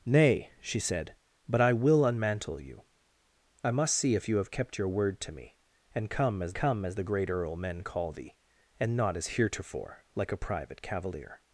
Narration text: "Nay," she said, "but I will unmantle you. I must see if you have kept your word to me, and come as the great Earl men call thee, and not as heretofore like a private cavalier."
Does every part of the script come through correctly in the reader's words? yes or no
no